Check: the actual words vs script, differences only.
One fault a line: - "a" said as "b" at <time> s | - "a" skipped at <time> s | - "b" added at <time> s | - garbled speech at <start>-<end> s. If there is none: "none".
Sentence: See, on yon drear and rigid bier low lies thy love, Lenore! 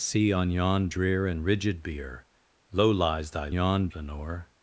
- "love" said as "yon" at 3.5 s